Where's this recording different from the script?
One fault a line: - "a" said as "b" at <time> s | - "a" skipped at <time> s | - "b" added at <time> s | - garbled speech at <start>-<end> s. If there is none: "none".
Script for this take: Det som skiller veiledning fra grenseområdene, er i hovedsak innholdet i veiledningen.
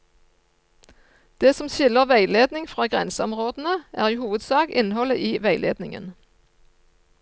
none